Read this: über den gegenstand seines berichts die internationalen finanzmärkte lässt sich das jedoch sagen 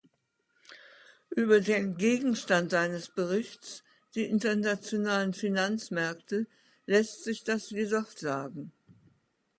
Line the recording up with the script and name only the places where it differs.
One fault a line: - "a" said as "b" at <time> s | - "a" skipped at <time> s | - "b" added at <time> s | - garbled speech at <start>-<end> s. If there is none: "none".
none